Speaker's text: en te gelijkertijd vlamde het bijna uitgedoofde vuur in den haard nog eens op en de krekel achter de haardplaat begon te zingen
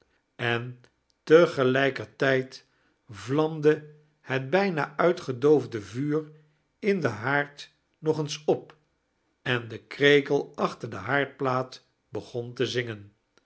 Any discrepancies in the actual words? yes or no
no